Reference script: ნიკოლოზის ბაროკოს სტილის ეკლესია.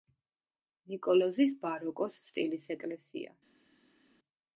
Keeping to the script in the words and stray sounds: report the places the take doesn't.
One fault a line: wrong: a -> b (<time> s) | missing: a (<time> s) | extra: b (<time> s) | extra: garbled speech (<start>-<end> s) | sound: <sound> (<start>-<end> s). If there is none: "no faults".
no faults